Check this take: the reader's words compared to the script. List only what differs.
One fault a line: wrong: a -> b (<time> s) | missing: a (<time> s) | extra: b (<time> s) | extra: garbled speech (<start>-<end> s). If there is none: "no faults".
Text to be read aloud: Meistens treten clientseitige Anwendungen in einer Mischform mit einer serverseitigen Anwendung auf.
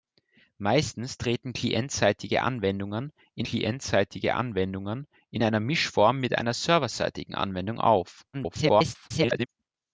extra: clientseitige Anwendungen in (3.4 s)
extra: garbled speech (8.3-9.5 s)